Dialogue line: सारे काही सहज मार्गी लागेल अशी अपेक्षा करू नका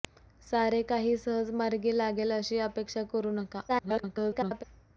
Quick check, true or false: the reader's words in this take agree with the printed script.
false